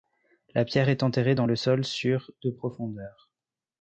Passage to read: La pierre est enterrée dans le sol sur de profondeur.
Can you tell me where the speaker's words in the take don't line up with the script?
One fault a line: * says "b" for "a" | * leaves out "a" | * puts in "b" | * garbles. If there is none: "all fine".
all fine